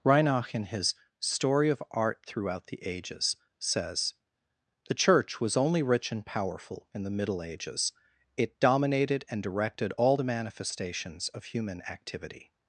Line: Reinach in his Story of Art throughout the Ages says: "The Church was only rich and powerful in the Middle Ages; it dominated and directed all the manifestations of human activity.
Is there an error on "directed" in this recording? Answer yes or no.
no